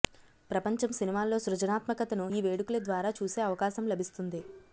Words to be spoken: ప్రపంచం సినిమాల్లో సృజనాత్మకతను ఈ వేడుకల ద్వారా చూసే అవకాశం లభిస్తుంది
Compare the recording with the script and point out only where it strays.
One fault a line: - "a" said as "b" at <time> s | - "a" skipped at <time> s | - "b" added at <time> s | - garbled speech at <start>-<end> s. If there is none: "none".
none